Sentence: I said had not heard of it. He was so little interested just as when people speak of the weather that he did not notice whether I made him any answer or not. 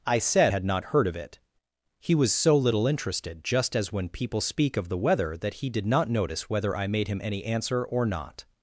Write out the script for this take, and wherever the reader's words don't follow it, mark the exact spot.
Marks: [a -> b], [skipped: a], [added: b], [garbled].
I said had not heard of it. He was so little interested just as when people speak of the weather that he did not notice whether I made him any answer or not.